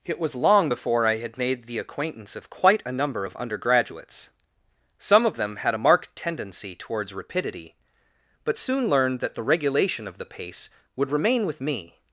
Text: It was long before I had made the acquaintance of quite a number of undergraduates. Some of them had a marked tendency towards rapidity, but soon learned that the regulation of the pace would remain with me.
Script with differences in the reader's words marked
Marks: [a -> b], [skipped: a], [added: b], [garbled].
It was long before I had made the acquaintance of quite a number of undergraduates. Some of them had a marked tendency towards rapidity, but soon learned that the regulation of the pace would remain with me.